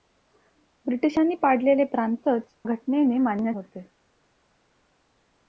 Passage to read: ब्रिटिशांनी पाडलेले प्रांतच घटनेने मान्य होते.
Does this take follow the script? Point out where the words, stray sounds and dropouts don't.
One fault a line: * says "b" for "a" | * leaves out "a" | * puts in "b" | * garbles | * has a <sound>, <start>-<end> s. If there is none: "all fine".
all fine